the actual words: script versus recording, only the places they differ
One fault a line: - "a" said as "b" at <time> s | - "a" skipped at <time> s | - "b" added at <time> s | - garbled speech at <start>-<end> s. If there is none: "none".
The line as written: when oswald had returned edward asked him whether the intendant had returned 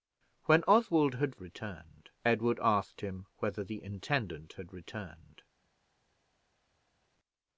none